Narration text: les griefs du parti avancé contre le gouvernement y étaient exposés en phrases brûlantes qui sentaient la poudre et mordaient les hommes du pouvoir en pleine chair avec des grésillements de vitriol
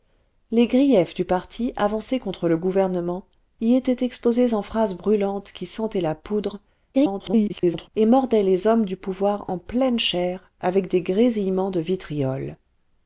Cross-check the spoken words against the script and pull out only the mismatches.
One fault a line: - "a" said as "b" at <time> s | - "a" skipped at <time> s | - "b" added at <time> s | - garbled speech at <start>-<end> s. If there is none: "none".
- garbled speech at 6.9-7.9 s